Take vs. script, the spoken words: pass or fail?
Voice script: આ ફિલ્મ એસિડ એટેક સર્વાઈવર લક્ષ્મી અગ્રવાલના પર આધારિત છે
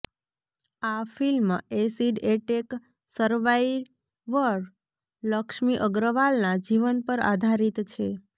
fail